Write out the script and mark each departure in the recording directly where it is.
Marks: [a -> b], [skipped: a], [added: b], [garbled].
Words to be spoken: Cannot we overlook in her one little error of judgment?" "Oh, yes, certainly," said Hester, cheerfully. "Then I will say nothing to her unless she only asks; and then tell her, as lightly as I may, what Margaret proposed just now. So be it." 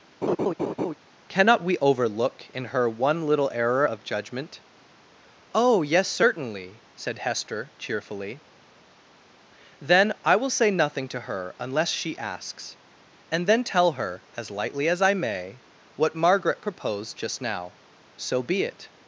Cannot we overlook in her one little error of judgment?" "Oh, yes, certainly," said Hester, cheerfully. "Then I will say nothing to her unless she [skipped: only] asks; and then tell her, as lightly as I may, what Margaret proposed just now. So be it."